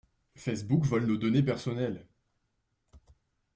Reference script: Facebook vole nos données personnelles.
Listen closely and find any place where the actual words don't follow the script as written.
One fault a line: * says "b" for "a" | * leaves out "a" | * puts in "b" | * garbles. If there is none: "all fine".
all fine